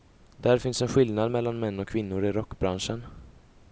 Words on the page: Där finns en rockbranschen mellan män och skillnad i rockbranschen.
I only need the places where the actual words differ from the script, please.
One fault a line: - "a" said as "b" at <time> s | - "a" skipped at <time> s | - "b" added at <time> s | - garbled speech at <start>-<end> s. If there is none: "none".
- "rockbranschen" said as "skillnad" at 0.9 s
- "skillnad" said as "kvinnor" at 1.9 s